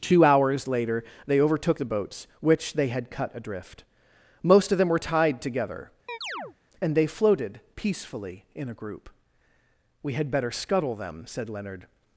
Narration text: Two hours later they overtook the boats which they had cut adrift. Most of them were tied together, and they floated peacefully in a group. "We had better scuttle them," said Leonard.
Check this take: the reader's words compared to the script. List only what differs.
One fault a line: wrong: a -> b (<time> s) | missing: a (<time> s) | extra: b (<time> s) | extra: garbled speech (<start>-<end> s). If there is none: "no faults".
no faults